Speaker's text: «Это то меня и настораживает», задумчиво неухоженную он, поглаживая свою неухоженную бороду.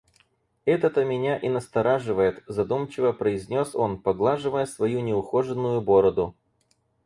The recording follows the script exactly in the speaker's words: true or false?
false